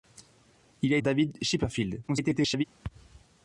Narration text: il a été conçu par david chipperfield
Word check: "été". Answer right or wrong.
wrong